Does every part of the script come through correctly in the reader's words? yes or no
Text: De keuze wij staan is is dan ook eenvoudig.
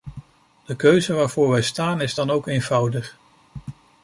no